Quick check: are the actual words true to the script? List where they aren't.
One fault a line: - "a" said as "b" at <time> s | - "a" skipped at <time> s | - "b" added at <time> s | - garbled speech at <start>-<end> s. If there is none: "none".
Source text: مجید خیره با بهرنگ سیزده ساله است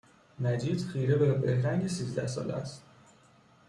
- "با" said as "به" at 1.1 s